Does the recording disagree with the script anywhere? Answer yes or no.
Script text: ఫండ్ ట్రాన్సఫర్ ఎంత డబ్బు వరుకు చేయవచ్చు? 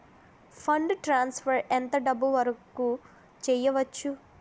no